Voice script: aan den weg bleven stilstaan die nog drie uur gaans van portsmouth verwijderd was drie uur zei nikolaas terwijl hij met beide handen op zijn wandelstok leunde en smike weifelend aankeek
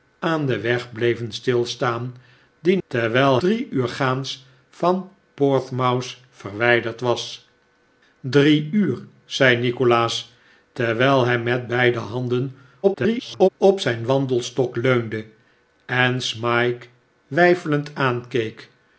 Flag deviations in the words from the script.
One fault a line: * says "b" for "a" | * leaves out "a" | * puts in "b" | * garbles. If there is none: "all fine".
* says "terwijl" for "nog"
* garbles